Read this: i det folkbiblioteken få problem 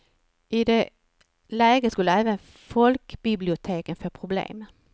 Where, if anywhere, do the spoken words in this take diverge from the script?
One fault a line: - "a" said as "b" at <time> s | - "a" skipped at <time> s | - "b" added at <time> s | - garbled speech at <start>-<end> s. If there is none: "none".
- "läget skulle även" added at 1.5 s